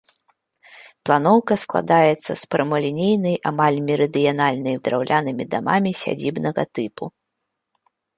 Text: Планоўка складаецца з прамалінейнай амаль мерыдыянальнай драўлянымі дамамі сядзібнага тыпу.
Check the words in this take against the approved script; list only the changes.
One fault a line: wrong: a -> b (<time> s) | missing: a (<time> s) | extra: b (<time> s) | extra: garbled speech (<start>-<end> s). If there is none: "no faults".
no faults